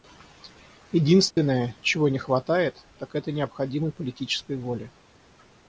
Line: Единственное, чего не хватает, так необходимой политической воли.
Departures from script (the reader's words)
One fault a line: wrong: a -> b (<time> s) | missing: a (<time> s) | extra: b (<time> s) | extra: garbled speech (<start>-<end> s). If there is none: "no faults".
extra: это (3.1 s)